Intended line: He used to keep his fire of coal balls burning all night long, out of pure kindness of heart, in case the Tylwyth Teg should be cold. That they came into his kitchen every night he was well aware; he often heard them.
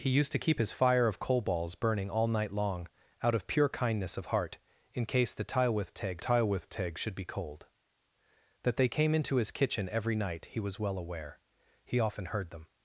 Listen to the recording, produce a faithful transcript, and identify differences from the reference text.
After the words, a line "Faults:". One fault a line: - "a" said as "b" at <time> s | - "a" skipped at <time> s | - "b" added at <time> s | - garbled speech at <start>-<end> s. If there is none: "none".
He used to keep his fire of coal balls burning all night long, out of pure kindness of heart, in case the Tylwyth Teg Tylwyth Teg should be cold. That they came into his kitchen every night he was well aware; he often heard them.
Faults:
- "Tylwyth Teg" added at 6.2 s